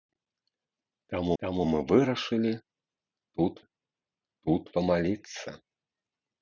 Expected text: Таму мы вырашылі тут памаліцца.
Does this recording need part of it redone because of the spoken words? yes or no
yes